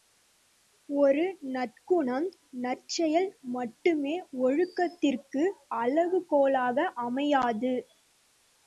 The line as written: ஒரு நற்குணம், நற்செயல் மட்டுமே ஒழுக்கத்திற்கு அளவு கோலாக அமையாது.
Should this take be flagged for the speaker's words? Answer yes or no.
no